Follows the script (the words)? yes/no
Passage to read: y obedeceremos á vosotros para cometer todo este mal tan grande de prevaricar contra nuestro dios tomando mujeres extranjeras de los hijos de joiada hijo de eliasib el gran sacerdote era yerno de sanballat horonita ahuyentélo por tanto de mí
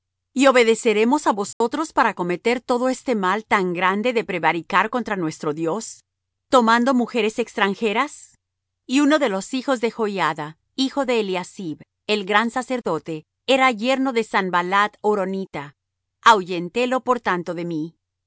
no